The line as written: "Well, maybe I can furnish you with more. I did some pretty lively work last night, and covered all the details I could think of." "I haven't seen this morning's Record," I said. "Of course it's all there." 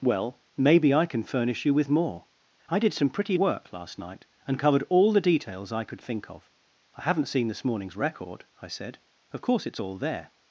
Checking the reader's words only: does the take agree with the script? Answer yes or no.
no